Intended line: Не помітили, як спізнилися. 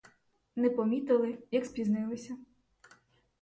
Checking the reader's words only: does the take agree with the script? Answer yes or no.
yes